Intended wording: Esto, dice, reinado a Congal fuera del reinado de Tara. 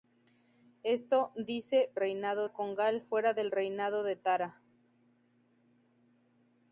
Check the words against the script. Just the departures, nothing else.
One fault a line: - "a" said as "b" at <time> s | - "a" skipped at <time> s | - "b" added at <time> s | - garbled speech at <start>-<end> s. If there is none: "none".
none